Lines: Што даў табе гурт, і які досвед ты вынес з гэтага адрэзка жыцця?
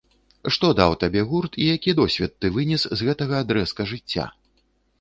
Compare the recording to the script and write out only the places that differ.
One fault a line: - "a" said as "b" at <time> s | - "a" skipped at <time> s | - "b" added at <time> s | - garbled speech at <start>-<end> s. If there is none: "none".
none